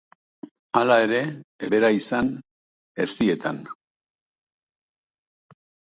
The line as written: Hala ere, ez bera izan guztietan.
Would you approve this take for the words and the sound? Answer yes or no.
yes